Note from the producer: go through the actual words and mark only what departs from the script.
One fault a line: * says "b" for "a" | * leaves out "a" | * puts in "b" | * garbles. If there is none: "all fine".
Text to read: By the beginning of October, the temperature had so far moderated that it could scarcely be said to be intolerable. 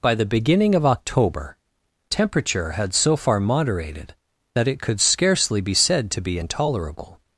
* leaves out "the"